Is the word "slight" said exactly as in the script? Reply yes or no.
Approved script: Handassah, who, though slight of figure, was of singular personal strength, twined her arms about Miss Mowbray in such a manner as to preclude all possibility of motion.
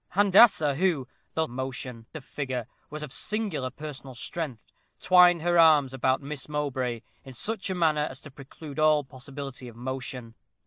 no